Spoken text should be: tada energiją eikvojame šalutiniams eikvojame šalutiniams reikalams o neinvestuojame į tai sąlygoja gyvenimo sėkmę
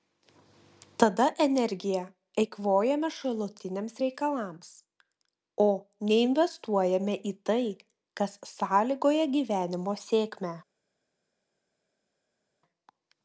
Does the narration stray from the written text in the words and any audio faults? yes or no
yes